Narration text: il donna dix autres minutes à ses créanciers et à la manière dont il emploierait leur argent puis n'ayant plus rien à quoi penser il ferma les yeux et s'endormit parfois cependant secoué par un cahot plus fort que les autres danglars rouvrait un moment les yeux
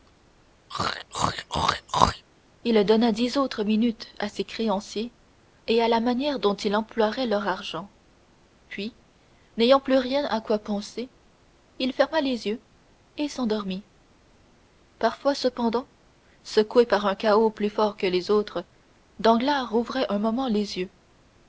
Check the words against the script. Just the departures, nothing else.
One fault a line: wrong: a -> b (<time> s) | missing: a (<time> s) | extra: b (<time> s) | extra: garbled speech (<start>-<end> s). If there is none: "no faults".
no faults